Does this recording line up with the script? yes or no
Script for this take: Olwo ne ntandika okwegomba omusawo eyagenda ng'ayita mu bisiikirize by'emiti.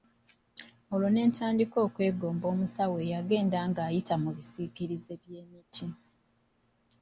yes